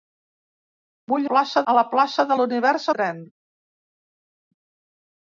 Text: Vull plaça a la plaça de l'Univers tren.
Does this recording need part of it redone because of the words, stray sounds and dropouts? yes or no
no